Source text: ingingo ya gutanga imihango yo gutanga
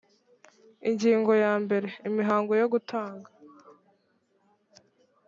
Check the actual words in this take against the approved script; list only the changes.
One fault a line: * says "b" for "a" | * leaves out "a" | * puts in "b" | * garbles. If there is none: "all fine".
* says "mbere" for "gutanga"